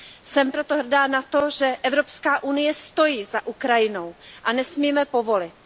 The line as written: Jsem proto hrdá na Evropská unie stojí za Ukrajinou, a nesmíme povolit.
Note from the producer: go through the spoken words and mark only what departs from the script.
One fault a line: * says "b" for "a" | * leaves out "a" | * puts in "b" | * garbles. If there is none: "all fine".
* puts in "to že"